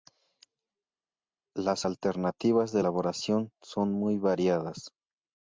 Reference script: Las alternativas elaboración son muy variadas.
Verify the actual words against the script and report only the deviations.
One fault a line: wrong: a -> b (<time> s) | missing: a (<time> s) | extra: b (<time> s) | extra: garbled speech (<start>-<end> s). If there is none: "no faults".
extra: de (2.7 s)